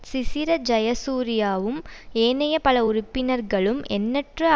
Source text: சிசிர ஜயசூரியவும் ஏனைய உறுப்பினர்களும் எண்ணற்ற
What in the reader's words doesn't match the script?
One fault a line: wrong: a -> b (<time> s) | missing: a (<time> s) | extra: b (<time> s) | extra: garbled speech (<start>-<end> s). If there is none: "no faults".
extra: பல (2.6 s)